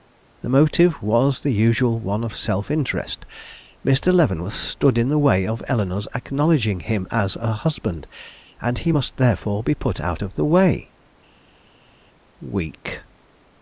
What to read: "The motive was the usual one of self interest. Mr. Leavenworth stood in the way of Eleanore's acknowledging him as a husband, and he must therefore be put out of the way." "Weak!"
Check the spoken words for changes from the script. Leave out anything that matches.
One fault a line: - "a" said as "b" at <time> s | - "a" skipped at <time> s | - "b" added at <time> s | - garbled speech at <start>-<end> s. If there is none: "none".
none